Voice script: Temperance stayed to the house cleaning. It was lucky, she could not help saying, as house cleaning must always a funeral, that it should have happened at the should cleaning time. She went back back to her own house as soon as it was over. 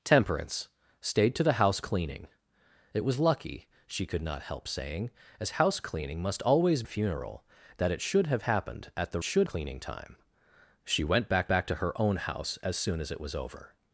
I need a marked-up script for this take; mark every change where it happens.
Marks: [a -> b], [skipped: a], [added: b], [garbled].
Temperance stayed to the house cleaning. It was lucky, she could not help saying, as house cleaning must always a funeral, that it should have happened at the should cleaning time. She went back back to her own house as soon as it was over.